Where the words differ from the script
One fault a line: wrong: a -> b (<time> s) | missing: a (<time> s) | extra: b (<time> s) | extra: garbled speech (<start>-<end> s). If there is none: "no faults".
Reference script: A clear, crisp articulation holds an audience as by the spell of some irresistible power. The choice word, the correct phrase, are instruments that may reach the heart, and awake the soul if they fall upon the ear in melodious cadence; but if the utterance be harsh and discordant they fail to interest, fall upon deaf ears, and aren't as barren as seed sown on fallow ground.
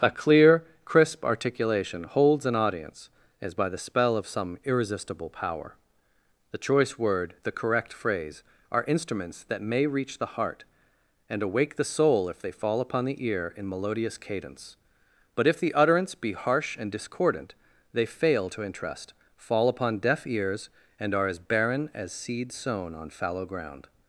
wrong: aren't -> are (21.1 s)